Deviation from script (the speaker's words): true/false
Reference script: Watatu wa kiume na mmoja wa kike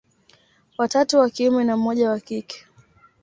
false